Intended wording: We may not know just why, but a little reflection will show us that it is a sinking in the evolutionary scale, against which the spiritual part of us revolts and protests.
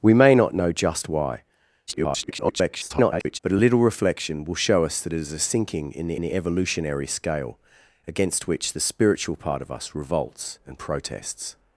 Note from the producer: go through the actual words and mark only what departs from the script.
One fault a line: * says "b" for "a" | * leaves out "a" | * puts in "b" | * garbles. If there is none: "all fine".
* garbles
* puts in "the"